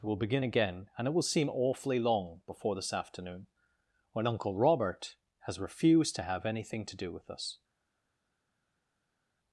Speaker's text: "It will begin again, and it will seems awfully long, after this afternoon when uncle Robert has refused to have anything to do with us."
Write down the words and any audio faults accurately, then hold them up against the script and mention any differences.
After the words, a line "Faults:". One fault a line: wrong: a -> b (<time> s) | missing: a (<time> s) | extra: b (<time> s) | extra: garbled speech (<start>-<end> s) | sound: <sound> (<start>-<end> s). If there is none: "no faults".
"It will begin again, and it will seem awfully long, before this afternoon when uncle Robert has refused to have anything to do with us."
Faults:
wrong: seems -> seem (1.2 s)
wrong: after -> before (2.5 s)